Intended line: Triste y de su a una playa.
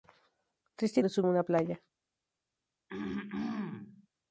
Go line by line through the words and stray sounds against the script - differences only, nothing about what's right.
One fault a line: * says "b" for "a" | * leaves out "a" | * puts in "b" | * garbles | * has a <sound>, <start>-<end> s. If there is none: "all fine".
* has a throat clearing, 2.9-4.1 s